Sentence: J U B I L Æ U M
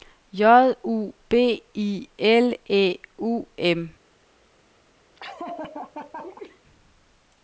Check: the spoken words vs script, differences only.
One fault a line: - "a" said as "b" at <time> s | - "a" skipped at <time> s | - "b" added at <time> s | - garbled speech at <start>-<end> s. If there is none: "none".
none